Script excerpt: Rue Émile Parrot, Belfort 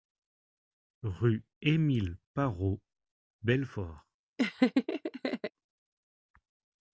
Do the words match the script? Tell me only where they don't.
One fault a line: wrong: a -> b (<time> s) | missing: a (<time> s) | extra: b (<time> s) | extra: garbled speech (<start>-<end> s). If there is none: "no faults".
no faults